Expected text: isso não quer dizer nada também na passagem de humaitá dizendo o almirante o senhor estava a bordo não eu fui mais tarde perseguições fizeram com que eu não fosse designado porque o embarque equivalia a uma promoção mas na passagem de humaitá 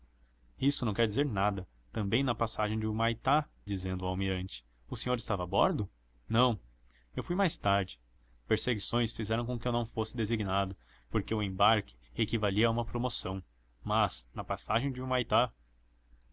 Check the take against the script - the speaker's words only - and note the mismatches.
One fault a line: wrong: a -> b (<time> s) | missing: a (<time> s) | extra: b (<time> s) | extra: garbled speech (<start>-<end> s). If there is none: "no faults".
no faults